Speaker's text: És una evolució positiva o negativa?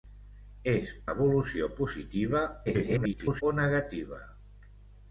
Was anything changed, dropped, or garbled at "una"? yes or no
yes